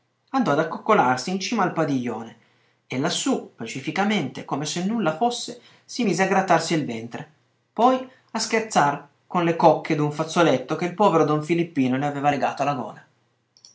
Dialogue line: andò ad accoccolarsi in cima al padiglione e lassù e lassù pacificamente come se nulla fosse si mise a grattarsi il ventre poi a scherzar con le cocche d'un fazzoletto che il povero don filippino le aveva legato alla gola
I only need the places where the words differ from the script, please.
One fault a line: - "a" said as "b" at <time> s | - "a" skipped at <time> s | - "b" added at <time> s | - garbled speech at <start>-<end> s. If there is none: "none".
- "e lassù" skipped at 3.5 s